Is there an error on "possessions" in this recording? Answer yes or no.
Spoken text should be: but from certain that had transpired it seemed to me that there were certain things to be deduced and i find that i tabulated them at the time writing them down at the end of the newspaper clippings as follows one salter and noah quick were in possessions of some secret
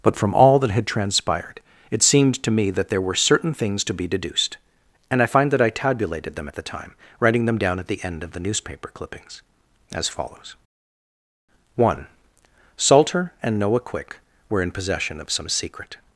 yes